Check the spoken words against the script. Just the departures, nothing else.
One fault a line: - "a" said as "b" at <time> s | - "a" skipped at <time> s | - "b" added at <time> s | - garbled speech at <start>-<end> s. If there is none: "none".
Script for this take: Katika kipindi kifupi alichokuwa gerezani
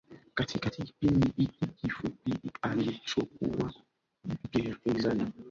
- "hiki" added at 1.4 s